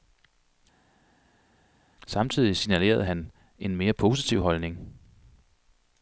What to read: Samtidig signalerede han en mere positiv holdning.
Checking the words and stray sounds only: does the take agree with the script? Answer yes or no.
yes